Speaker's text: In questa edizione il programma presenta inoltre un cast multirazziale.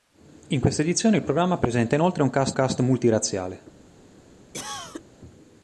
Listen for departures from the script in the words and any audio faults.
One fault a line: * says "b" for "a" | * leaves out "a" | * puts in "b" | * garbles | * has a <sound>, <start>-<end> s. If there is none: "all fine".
* puts in "cast"
* has a cough, 4.5-5.0 s